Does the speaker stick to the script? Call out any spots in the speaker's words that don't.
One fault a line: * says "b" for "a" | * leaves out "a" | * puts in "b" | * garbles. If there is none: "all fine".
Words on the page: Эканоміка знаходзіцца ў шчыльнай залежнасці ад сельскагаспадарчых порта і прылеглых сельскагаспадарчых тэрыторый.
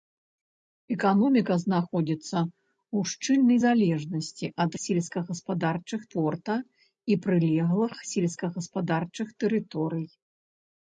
all fine